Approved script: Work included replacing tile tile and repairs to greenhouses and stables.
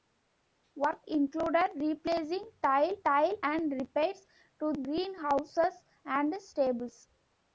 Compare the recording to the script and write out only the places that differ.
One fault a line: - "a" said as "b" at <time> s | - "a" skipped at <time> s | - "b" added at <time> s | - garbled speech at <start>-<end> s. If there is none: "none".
none